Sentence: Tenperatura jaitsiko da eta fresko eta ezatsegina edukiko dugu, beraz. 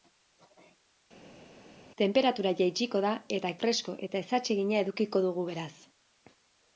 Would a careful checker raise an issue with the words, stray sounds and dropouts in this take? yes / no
no